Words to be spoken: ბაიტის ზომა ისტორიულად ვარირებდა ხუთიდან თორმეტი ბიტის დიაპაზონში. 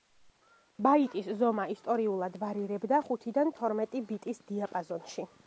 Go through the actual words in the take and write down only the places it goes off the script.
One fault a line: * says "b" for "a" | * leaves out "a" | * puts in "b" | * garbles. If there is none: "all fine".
all fine